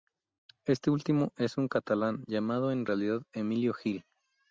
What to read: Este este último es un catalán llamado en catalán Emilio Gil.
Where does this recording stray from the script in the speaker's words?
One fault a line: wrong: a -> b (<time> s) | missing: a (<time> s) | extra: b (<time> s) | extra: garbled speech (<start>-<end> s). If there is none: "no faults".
missing: este (0.9 s)
wrong: catalán -> realidad (2.8 s)